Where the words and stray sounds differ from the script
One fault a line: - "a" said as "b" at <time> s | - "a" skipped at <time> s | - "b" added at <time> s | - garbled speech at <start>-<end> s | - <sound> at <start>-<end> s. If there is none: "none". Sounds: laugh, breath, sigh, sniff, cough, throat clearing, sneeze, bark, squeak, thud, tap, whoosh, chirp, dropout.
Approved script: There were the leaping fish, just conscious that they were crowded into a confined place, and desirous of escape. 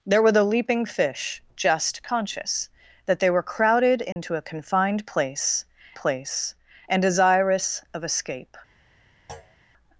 - dropout at 4.1-4.2 s
- "place" added at 5.9 s
- thud at 9.3-9.6 s